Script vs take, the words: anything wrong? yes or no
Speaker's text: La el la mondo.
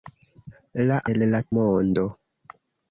no